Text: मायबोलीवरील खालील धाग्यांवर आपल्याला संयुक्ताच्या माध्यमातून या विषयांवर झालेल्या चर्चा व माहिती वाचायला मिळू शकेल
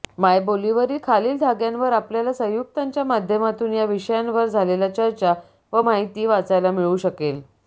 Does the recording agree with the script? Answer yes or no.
yes